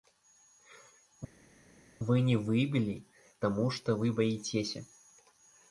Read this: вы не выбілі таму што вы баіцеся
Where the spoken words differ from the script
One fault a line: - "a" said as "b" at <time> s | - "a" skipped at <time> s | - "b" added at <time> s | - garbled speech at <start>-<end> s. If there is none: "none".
none